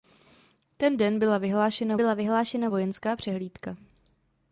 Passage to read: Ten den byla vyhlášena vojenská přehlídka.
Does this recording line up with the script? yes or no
no